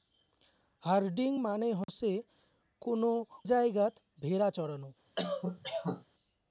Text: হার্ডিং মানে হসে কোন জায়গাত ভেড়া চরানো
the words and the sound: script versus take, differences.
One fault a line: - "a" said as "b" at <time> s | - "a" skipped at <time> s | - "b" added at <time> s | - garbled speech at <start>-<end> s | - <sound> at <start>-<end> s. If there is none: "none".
- dropout at 1.8-1.9 s
- cough at 5.2-6.0 s